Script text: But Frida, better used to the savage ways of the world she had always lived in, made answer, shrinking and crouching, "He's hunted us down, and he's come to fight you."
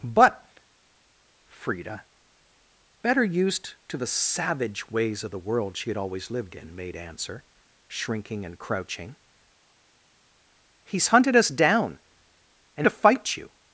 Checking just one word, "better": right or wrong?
right